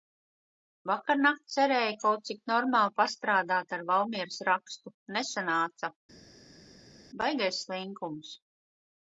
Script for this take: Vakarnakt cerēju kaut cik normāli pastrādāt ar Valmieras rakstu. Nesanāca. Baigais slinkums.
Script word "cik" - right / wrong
right